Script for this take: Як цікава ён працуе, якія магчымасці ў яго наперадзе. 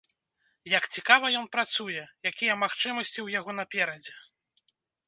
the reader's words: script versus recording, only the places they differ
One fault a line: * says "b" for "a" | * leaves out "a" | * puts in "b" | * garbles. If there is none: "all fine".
all fine